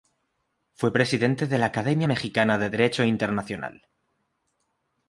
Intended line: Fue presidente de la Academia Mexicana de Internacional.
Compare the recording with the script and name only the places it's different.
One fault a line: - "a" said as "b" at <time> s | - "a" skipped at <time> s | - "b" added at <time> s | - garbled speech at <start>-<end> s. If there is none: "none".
- "Derecho" added at 2.7 s